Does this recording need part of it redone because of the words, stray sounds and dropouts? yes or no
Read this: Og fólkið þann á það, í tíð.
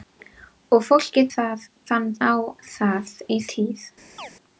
yes